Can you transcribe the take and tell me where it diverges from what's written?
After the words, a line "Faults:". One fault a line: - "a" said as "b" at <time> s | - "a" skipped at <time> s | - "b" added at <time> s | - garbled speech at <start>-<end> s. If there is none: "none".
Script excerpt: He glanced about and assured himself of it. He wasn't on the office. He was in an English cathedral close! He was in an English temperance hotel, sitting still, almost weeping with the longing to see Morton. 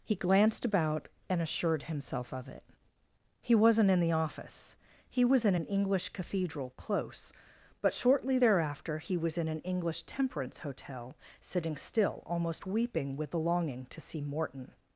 He glanced about and assured himself of it. He wasn't in the office. He was in an English cathedral close! But shortly thereafter he was in an English temperance hotel, sitting still, almost weeping with the longing to see Morton.
Faults:
- "on" said as "in" at 3.9 s
- "But shortly thereafter" added at 7.8 s